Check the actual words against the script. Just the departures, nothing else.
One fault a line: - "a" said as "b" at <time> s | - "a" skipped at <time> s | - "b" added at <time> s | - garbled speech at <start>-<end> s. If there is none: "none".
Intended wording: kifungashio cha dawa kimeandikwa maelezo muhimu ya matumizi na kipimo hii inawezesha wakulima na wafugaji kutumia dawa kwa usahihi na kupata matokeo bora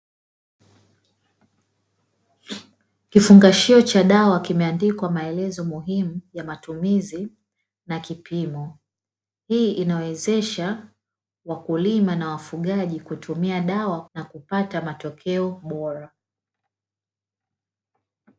- "kwa usahihi" skipped at 14.1 s